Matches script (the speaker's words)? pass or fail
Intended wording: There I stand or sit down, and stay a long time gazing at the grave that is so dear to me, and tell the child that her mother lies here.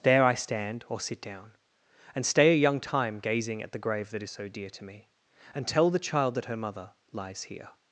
fail